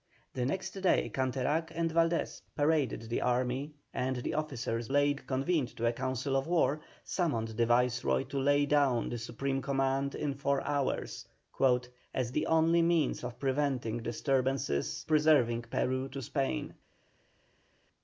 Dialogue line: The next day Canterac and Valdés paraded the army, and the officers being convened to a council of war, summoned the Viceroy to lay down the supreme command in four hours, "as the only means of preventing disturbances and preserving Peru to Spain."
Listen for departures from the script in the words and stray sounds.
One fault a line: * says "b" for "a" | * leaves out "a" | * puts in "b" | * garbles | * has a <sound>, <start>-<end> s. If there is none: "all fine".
* says "lay" for "being"
* leaves out "and"